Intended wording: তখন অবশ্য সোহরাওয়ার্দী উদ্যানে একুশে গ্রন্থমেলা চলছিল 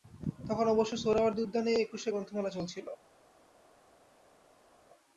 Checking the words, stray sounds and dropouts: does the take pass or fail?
pass